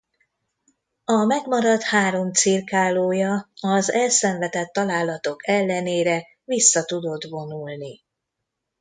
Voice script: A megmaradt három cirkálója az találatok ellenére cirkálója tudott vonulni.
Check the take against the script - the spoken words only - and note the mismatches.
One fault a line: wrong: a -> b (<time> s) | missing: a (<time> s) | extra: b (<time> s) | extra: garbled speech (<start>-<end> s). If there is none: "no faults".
extra: elszenvedett (3.9 s)
wrong: cirkálója -> vissza (6.4 s)